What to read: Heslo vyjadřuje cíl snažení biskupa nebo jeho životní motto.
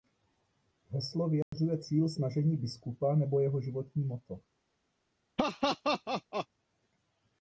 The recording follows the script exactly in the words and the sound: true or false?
false